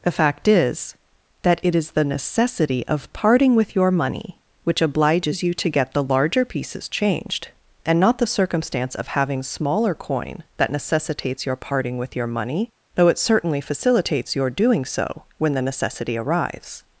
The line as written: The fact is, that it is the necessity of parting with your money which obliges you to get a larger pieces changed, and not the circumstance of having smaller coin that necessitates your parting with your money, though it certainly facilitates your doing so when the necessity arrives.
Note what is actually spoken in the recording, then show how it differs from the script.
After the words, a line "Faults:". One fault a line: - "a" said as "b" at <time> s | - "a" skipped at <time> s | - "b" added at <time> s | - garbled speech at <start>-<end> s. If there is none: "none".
The fact is, that it is the necessity of parting with your money which obliges you to get the larger pieces changed, and not the circumstance of having smaller coin that necessitates your parting with your money, though it certainly facilitates your doing so when the necessity arrives.
Faults:
- "a" said as "the" at 5.9 s